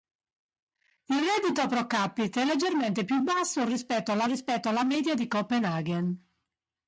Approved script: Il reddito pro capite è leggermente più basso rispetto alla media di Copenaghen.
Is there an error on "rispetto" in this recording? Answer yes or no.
no